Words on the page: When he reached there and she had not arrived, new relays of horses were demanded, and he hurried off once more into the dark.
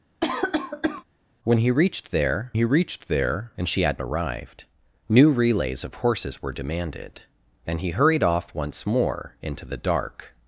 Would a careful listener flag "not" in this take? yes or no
yes